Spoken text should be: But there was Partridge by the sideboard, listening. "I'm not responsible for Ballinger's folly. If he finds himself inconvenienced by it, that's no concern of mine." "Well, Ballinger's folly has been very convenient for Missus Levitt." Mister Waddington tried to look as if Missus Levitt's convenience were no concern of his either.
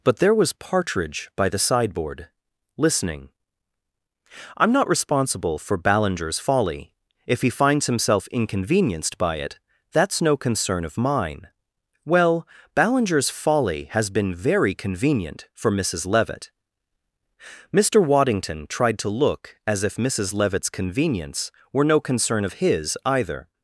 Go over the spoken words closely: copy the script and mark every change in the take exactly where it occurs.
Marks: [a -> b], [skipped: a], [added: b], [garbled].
But there was Partridge by the sideboard, listening. "I'm not responsible for Ballinger's folly. If he finds himself inconvenienced by it, that's no concern of mine." "Well, Ballinger's folly has been very convenient for Missus Levitt." Mister Waddington tried to look as if Missus Levitt's convenience were no concern of his either.